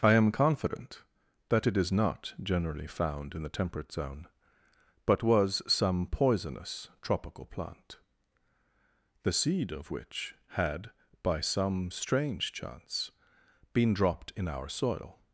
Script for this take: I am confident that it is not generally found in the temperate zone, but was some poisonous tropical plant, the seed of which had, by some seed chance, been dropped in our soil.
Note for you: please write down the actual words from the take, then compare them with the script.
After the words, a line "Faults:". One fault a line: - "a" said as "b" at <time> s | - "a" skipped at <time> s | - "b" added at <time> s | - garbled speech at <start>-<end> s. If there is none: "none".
I am confident that it is not generally found in the temperate zone, but was some poisonous tropical plant, the seed of which had, by some strange chance, been dropped in our soil.
Faults:
- "seed" said as "strange" at 11.9 s